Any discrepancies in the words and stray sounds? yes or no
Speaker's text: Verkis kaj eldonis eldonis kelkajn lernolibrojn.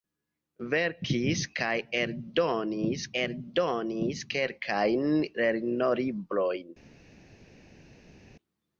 no